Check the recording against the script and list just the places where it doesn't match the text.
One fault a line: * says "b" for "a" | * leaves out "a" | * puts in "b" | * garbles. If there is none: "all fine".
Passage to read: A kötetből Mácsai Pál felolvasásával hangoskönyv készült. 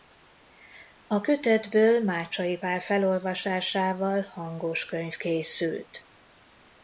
all fine